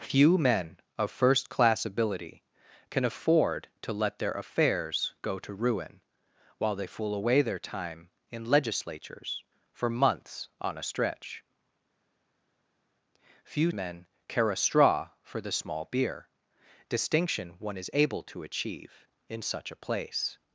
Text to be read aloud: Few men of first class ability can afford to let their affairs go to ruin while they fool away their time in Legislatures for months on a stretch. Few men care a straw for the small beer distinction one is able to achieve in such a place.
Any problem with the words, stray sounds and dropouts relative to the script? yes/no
no